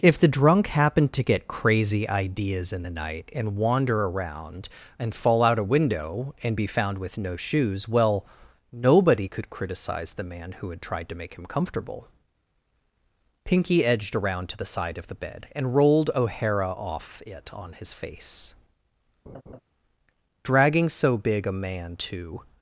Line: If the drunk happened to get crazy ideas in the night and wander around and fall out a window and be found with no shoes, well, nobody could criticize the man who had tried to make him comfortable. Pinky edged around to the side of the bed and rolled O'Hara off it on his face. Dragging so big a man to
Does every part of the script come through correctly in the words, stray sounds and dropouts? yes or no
no